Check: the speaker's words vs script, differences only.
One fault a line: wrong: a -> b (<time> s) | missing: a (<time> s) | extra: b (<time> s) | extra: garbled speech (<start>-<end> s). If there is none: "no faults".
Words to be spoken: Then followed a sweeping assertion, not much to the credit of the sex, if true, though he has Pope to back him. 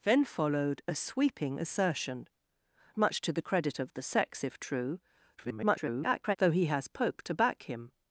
missing: not (2.3 s)
extra: garbled speech (5.4-6.4 s)